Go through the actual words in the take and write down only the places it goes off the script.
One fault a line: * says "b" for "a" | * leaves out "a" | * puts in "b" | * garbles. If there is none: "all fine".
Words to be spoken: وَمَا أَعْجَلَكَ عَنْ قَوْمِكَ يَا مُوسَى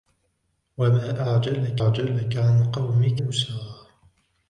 * puts in "أَعْجَلَكَ"
* leaves out "يَا"